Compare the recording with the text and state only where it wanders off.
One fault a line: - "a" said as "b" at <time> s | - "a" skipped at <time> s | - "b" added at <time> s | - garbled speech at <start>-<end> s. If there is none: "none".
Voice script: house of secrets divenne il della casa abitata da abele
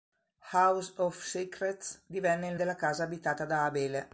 none